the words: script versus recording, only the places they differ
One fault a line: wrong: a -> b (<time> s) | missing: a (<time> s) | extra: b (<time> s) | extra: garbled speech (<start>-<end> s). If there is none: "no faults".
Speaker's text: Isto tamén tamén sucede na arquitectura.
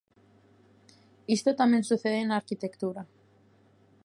missing: tamén (1.9 s)